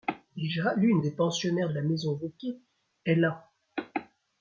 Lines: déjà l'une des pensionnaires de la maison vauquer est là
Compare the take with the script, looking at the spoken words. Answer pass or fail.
pass